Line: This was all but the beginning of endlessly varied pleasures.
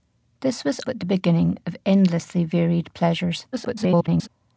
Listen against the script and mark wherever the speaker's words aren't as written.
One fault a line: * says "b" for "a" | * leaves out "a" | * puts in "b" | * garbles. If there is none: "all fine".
* leaves out "all"
* garbles